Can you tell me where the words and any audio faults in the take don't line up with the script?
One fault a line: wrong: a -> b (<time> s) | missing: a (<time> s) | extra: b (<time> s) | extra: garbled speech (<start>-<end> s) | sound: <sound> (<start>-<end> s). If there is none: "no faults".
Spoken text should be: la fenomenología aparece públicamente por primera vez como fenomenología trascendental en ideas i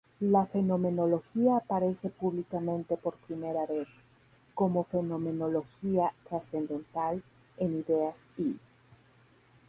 no faults